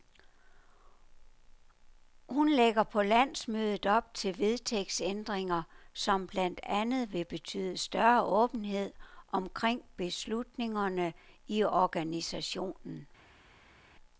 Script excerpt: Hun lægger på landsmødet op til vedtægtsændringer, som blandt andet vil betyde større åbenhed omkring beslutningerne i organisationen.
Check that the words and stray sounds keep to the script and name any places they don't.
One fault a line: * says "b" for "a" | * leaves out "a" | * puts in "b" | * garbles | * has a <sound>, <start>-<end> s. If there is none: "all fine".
all fine